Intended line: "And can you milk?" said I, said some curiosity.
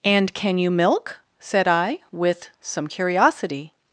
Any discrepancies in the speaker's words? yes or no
yes